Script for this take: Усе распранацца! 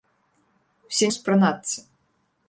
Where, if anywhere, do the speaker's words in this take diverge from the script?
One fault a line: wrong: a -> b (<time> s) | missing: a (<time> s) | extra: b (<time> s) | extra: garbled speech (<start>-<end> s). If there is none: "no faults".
no faults